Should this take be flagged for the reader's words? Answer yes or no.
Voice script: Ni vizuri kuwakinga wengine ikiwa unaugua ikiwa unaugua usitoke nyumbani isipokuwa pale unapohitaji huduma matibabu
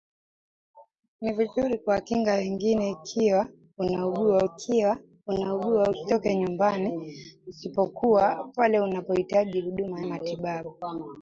no